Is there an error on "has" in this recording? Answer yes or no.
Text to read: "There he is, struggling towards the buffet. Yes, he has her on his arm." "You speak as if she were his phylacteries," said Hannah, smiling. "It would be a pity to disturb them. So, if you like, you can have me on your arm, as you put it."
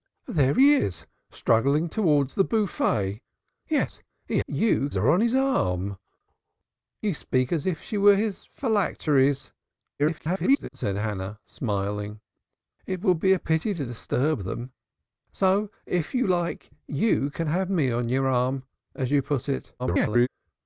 yes